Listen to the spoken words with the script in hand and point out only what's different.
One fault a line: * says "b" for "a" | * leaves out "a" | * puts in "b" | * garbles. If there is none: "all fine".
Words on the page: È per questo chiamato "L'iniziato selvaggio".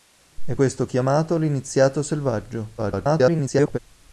* leaves out "per"
* garbles